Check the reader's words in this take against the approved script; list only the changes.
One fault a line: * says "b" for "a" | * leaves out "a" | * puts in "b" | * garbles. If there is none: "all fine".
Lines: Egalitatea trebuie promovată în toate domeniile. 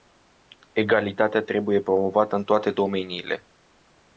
all fine